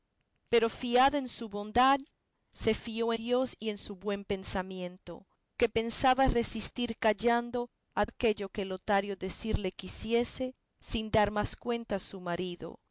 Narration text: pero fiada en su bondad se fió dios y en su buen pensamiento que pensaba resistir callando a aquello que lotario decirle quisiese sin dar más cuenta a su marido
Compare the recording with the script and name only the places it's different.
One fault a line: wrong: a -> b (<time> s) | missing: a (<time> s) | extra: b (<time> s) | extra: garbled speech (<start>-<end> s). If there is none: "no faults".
no faults